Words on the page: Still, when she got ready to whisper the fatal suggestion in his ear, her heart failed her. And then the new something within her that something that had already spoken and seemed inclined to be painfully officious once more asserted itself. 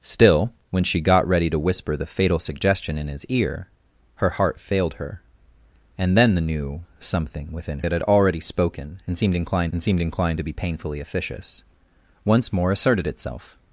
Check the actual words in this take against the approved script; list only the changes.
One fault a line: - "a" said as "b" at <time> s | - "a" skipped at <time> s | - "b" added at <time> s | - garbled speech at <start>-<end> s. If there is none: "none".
- "her" skipped at 7.8 s
- "something that" skipped at 7.9 s
- "and seemed inclined" added at 9.7 s